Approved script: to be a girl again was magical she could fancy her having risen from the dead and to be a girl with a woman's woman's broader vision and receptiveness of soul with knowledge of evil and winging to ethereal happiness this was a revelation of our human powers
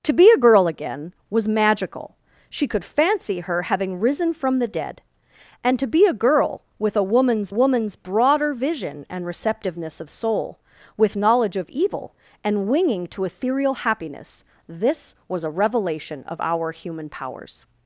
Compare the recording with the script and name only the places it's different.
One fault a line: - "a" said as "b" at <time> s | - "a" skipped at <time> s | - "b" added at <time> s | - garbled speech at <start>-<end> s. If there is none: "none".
none